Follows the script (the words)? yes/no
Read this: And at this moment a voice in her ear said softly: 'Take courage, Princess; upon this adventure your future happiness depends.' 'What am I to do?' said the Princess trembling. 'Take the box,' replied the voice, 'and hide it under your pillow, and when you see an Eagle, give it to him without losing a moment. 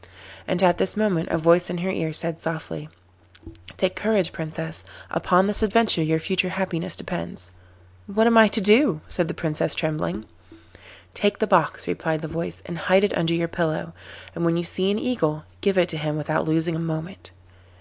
yes